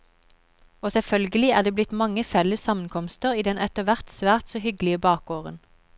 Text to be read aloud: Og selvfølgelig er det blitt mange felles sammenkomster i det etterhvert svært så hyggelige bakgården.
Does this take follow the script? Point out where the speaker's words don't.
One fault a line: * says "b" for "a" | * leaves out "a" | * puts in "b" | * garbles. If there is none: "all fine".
* says "den" for "det"